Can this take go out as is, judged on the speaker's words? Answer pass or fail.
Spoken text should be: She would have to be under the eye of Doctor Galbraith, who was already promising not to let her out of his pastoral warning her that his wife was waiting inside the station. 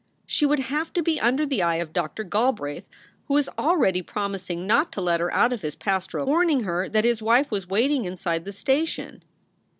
pass